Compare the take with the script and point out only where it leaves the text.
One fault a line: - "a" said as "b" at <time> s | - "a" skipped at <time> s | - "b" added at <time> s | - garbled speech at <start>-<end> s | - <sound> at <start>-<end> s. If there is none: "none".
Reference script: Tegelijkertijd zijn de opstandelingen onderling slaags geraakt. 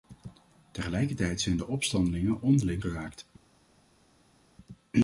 - "slaags" skipped at 2.8 s